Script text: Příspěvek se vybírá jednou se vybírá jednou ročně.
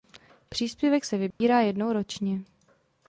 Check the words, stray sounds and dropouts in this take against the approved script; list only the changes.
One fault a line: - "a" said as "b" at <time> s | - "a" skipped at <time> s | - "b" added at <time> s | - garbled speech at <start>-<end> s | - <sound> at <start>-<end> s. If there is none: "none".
- dropout at 1.3-1.4 s
- "se vybírá jednou" skipped at 1.9 s